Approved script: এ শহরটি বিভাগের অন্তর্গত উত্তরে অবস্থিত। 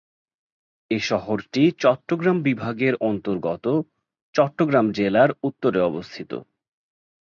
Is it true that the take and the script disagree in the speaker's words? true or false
true